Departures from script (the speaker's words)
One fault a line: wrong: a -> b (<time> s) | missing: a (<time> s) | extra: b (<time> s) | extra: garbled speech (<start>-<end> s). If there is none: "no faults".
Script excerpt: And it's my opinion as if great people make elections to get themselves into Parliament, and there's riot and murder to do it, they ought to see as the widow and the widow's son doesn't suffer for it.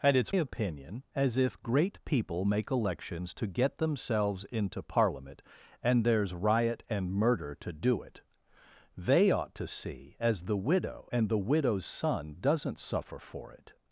missing: my (0.3 s)